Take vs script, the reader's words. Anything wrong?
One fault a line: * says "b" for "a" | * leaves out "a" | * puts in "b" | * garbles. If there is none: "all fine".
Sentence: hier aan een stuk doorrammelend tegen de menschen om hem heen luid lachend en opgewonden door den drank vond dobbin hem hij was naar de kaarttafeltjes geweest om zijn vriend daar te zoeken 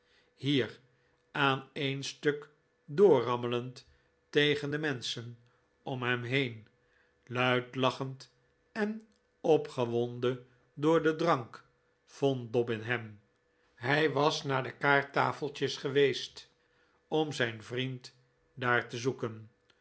all fine